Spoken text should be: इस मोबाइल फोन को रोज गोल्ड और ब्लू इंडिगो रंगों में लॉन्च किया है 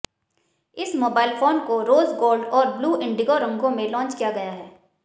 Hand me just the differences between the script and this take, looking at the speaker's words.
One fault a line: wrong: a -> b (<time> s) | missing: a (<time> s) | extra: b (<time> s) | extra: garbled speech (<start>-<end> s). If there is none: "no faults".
extra: गया (4.3 s)